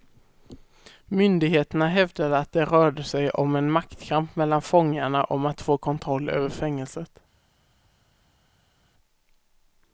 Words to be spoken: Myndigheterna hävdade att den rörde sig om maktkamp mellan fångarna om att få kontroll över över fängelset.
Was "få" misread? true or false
false